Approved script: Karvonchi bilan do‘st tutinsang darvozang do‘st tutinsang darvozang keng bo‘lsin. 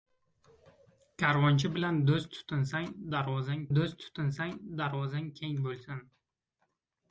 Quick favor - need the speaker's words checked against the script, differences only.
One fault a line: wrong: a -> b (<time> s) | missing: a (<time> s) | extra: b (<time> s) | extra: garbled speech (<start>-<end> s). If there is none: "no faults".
no faults